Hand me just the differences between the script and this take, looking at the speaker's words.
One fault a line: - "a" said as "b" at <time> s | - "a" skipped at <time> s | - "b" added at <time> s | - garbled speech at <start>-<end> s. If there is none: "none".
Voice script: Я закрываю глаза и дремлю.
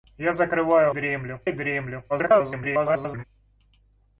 - "глаза" said as "дремлю" at 0.9 s
- garbled speech at 2.1-3.2 s